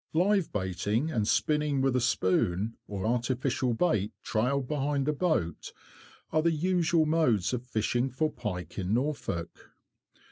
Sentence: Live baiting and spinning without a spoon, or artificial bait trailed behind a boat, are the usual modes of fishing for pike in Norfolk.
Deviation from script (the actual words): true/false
true